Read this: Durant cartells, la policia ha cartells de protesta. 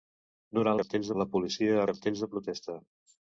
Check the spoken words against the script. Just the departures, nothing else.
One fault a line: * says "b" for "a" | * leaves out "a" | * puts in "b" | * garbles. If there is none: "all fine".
all fine